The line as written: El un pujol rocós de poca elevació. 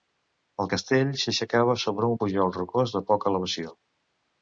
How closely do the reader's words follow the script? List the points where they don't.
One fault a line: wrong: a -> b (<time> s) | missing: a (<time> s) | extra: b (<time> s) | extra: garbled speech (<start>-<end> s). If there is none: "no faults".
extra: castell s'aixecava sobre (0.7 s)